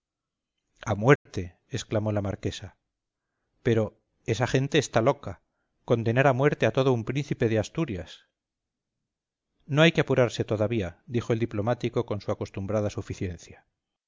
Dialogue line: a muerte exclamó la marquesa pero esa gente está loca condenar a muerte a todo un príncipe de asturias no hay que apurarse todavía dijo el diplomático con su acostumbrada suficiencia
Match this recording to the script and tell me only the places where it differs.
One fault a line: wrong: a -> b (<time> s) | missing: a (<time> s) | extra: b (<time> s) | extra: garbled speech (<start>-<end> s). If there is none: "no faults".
no faults